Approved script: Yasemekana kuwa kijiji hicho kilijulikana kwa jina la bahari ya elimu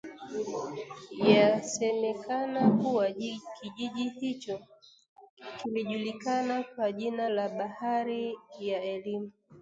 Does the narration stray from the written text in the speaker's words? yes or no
no